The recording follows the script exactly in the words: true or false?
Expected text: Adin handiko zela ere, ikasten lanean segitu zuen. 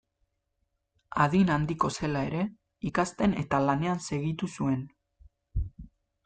false